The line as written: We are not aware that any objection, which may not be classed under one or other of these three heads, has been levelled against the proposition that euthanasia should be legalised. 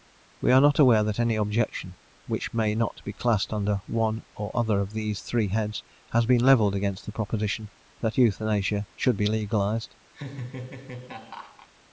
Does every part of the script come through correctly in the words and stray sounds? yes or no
no